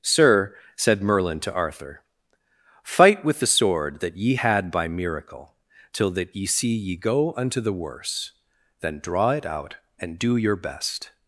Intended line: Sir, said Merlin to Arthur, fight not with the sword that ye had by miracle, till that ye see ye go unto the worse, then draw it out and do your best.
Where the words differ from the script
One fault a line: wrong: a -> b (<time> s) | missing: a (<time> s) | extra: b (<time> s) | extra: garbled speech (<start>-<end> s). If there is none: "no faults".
missing: not (3.2 s)